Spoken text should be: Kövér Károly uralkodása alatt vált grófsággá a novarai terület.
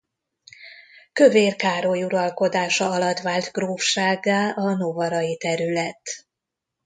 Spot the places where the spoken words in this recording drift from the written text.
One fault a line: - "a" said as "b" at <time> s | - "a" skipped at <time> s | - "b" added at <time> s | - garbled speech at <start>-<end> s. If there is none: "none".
none